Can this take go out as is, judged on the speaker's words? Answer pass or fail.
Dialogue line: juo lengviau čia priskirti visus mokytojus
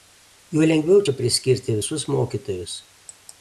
pass